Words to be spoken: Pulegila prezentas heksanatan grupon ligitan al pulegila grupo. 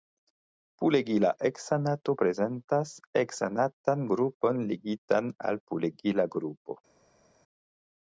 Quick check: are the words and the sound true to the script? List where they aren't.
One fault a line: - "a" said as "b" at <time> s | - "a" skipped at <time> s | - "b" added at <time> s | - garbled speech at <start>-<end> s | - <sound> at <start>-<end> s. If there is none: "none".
- "heksanato" added at 1.5 s